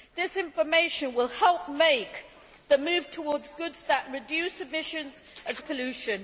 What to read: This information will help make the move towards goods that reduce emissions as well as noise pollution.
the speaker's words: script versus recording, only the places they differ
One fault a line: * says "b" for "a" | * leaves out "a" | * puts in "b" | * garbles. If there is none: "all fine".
* leaves out "well as noise"